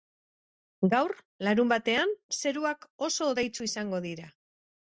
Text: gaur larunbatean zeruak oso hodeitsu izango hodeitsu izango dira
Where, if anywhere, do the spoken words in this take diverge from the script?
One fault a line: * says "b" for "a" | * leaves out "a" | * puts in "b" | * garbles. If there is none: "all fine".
* leaves out "hodeitsu izango"